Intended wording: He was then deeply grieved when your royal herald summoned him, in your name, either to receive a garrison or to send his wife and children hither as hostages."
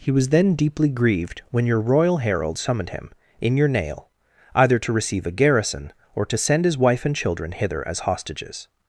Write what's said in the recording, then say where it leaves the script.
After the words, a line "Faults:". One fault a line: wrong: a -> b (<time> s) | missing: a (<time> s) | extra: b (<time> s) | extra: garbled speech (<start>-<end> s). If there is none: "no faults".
He was then deeply grieved when your royal herald summoned him, in your nail, either to receive a garrison or to send his wife and children hither as hostages."
Faults:
wrong: name -> nail (3.7 s)